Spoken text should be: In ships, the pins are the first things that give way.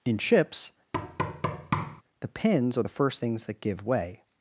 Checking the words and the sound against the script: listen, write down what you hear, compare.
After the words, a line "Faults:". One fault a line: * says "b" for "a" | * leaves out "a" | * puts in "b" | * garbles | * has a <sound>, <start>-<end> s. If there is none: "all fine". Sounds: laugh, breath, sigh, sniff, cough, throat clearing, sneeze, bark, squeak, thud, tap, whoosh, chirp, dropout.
In ships, the pins are the first things that give way.
Faults:
* has a thud, 0.9-2.0 s